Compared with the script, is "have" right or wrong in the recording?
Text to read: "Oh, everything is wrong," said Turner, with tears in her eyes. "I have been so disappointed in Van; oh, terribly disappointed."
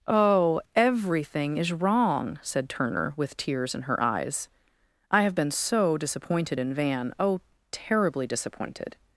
right